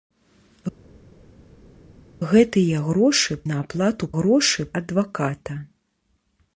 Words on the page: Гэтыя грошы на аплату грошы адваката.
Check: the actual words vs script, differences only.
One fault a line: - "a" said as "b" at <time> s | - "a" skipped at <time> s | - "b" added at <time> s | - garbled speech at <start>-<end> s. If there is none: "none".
none